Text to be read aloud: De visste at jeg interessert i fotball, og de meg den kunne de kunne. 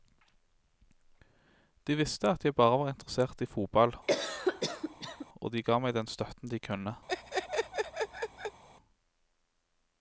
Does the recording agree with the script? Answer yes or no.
no